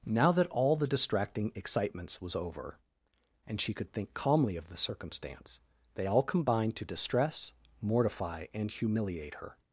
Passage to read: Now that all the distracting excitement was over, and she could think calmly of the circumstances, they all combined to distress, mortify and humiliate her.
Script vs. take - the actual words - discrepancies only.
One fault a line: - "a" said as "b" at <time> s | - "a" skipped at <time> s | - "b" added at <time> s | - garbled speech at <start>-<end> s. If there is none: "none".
- "excitement" said as "excitements" at 1.5 s
- "circumstances" said as "circumstance" at 4.8 s